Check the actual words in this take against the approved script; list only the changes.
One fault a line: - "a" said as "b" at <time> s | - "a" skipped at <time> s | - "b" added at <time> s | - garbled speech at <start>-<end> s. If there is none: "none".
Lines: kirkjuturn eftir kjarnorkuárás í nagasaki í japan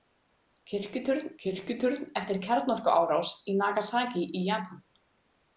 - "kirkjuturn" added at 1.4 s